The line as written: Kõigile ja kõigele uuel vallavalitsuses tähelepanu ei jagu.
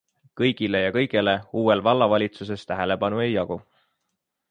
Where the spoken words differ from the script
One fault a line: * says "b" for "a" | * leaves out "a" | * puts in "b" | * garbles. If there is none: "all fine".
all fine